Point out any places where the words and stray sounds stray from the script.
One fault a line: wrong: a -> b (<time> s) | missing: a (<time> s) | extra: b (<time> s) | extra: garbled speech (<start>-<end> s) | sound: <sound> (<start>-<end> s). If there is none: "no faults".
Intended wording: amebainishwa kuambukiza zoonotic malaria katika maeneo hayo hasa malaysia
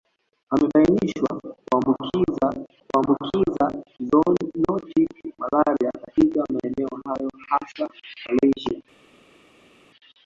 extra: kuambukiza (2.9 s)